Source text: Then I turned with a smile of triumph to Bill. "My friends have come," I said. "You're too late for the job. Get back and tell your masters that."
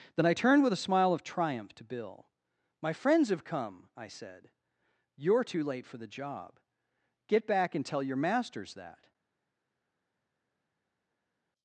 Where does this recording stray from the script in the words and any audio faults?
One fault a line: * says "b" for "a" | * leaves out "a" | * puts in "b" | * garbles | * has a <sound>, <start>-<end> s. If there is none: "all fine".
all fine